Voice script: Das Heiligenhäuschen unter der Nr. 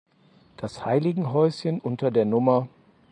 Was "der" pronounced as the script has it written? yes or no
yes